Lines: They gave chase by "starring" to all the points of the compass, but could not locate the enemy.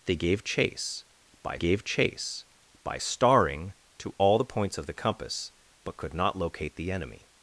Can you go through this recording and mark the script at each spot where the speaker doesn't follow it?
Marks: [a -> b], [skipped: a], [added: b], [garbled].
They gave chase by [added: gave chase by] "starring" to all the points of the compass, but could not locate the enemy.